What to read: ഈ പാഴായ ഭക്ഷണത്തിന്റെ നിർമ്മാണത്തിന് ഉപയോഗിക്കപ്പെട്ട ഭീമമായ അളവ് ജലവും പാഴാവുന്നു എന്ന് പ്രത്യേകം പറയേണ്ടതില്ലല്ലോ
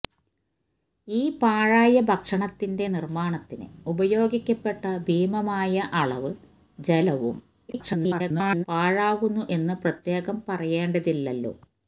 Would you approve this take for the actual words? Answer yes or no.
no